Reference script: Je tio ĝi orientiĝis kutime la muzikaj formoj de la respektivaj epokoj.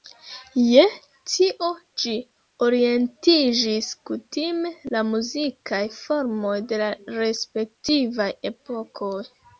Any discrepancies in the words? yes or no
no